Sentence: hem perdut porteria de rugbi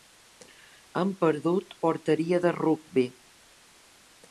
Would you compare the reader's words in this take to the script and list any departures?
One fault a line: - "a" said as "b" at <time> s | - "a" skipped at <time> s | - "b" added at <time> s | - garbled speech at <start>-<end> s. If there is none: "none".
none